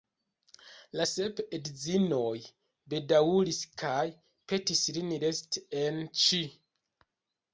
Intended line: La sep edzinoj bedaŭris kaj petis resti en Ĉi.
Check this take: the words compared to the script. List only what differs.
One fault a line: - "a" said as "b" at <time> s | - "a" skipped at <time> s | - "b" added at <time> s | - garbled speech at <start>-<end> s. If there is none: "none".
- "lin" added at 5.0 s